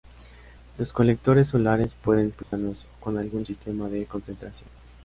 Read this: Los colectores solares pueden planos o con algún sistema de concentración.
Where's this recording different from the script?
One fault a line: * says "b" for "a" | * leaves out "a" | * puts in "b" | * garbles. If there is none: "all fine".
all fine